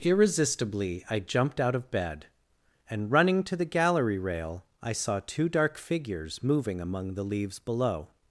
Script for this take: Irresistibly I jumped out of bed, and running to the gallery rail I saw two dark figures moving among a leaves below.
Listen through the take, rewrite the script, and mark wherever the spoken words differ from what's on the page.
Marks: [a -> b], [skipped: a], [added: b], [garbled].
Irresistibly I jumped out of bed, and running to the gallery rail I saw two dark figures moving among [a -> the] leaves below.